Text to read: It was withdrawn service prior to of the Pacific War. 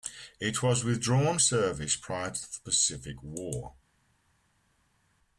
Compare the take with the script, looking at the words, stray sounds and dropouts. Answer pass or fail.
pass